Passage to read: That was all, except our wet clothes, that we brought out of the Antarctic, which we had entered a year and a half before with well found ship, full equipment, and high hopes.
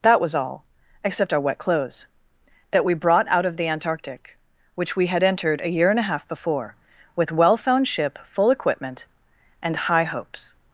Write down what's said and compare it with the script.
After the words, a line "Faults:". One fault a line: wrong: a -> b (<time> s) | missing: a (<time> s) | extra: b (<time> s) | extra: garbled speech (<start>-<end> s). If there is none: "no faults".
That was all, except our wet clothes, that we brought out of the Antarctic, which we had entered a year and a half before with well found ship, full equipment, and high hopes.
Faults:
no faults